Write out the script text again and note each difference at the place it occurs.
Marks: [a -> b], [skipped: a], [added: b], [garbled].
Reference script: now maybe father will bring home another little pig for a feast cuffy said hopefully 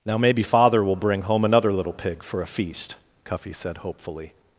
now maybe father will bring home another little pig for a feast cuffy said hopefully